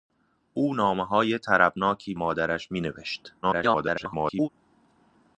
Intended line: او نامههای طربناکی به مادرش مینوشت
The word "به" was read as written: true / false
false